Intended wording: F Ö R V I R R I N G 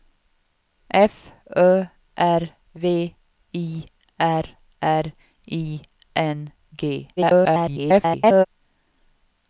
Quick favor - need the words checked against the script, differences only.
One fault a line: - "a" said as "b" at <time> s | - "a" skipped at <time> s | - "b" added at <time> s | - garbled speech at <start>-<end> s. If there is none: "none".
- garbled speech at 7.2-8.5 s